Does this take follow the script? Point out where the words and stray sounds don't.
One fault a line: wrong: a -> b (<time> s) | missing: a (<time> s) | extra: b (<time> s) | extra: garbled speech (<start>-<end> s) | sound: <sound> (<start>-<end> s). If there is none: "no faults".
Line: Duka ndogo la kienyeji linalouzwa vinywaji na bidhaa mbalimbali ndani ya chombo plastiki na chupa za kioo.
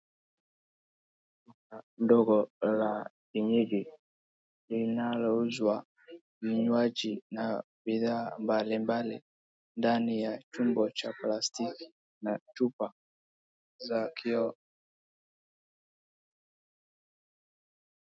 extra: cha (11.0 s)